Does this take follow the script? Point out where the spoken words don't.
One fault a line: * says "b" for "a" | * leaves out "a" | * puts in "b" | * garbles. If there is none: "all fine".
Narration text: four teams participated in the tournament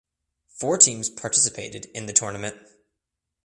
all fine